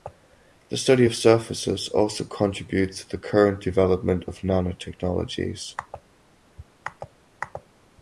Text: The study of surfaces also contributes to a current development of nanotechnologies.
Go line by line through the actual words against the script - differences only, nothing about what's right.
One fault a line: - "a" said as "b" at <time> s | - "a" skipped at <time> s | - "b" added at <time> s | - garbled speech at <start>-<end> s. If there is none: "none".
- "a" said as "the" at 3.1 s